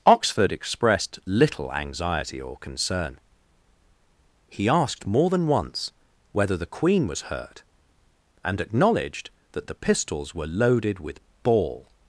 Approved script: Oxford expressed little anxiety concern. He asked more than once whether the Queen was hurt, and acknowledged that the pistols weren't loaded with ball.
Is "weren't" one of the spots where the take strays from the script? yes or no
yes